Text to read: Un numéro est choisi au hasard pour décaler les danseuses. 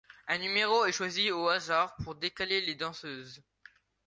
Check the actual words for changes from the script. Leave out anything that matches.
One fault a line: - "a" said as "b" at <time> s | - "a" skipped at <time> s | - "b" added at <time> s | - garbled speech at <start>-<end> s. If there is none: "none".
none